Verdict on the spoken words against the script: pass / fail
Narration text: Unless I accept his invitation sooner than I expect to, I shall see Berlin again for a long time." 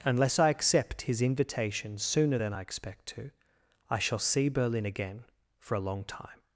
pass